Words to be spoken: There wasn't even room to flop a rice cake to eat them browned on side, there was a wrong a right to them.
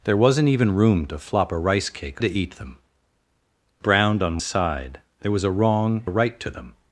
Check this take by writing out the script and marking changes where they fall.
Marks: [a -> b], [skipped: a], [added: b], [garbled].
There wasn't even room to flop a rice cake to eat them browned on side, there was a wrong a right to them.